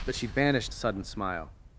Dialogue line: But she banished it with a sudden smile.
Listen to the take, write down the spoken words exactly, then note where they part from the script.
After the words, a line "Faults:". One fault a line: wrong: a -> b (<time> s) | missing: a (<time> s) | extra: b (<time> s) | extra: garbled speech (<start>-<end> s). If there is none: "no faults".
But she banished a sudden smile.
Faults:
missing: it with (0.8 s)